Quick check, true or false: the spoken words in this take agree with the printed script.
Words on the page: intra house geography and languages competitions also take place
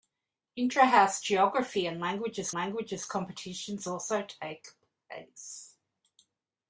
false